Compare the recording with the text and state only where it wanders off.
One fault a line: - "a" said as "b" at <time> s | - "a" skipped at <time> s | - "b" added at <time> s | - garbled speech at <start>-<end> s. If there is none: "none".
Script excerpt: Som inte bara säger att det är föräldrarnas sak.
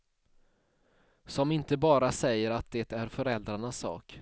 none